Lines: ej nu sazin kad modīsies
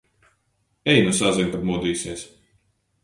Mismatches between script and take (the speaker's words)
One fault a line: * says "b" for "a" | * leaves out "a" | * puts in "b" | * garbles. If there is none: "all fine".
all fine